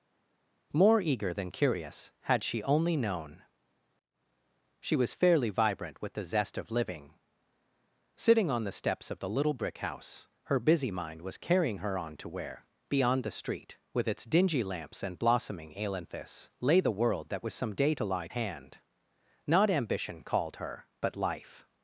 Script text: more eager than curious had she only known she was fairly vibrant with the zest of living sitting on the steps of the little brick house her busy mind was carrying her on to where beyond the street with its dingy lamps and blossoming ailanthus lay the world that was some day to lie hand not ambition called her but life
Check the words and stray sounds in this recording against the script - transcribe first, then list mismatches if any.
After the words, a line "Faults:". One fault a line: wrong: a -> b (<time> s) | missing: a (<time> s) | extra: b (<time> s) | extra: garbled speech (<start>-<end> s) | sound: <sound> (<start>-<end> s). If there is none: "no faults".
more eager than curious had she only known she was fairly vibrant with the zest of living sitting on the steps of the little brick house her busy mind was carrying her on to where beyond the street with its dingy lamps and blossoming ailanthus lay the world that was some day to lie hand not ambition called her but life
Faults:
no faults